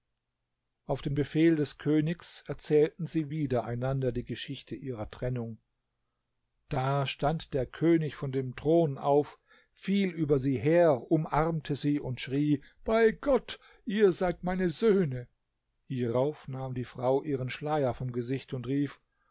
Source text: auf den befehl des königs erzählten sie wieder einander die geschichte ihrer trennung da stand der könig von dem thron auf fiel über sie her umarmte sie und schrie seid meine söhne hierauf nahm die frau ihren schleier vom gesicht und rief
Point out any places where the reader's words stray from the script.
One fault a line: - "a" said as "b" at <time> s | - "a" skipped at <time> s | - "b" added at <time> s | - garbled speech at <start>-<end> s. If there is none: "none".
- "bei gott ihr" added at 12.8 s